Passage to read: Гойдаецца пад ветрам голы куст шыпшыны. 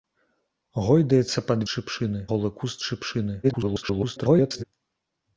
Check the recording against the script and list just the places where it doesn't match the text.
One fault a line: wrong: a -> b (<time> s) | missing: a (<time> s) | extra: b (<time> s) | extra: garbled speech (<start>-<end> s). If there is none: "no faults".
wrong: ветрам -> шыпшыны (1.7 s)
extra: garbled speech (3.4-4.6 s)